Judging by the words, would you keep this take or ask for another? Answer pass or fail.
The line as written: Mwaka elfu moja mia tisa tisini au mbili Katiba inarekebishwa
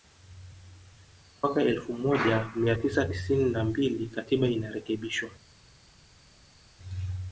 fail